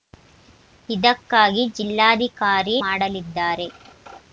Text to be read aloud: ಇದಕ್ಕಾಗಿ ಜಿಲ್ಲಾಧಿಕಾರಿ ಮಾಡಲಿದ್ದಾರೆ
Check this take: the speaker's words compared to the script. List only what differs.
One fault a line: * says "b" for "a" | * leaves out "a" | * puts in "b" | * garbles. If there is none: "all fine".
all fine